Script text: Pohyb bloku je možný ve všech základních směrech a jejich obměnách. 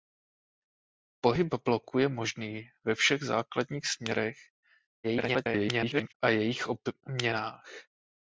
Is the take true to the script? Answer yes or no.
no